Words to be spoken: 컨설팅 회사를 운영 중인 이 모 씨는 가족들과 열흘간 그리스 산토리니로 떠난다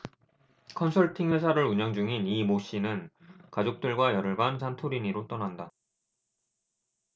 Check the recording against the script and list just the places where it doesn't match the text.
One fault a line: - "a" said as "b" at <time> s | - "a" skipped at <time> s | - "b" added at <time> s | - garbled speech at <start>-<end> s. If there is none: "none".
- "그리스" skipped at 4.6 s